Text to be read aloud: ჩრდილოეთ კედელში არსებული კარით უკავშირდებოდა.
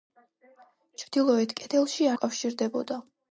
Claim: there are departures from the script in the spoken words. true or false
true